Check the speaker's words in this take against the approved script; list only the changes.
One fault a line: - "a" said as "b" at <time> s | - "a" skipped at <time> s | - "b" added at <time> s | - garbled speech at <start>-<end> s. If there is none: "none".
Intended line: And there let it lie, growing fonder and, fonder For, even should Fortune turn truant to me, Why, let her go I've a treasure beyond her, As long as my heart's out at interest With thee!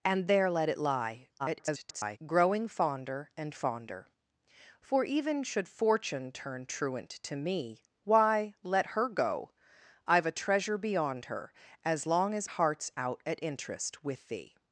- garbled speech at 1.4-2.2 s
- "my" skipped at 12.5 s